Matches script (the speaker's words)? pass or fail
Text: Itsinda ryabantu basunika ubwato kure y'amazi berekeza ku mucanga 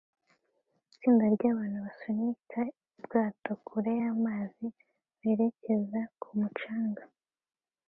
pass